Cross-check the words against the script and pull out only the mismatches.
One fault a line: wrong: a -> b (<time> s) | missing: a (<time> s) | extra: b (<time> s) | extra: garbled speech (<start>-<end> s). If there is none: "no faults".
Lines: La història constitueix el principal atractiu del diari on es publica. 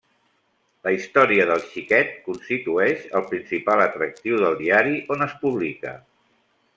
extra: del xiquet (1.5 s)